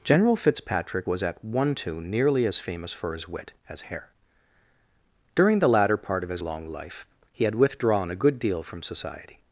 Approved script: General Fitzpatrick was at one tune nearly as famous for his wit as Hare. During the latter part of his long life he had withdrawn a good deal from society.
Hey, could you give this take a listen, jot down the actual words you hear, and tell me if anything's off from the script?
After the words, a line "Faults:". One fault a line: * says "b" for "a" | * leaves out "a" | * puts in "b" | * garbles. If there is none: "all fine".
General Fitzpatrick was at one tune nearly as famous for his wit as Hare. During the latter part of his long life he had withdrawn a good deal from society.
Faults:
all fine